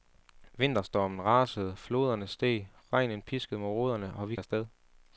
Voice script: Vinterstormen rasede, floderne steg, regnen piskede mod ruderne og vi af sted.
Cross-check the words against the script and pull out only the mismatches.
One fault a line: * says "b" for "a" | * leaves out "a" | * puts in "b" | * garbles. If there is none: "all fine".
all fine